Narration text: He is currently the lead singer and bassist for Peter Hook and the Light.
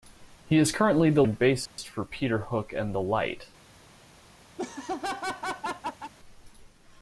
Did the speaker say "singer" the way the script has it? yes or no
no